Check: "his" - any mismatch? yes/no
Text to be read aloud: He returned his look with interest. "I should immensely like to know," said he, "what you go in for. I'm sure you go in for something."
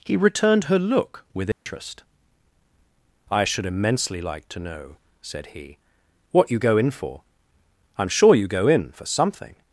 yes